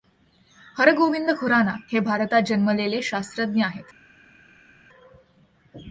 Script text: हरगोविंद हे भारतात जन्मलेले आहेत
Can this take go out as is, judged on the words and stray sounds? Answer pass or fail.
fail